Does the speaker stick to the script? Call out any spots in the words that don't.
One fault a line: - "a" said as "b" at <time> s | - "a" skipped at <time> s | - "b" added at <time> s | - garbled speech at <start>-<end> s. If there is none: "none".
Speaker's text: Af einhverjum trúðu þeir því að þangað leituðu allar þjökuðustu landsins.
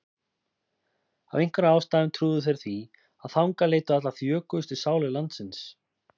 - "ástæðum" added at 1.8 s
- "sálir" added at 4.9 s